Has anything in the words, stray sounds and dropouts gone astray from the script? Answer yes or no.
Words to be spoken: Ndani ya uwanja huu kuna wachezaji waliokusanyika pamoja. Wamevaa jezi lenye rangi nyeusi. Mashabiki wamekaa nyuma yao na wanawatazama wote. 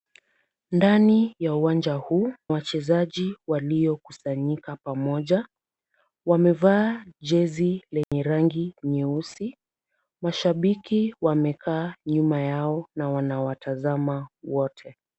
yes